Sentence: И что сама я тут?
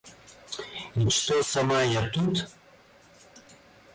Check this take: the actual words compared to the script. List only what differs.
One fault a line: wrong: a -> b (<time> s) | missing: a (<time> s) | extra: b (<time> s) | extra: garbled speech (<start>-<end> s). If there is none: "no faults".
no faults